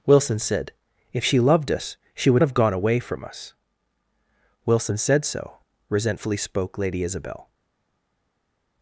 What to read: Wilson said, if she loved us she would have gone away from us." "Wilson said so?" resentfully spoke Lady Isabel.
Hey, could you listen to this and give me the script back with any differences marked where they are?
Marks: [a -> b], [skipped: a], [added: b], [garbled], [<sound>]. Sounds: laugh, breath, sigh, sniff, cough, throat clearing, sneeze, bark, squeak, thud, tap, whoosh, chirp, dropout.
Wilson said, if she loved us she would have gone away from us." "Wilson said so?" resentfully spoke Lady Isabel.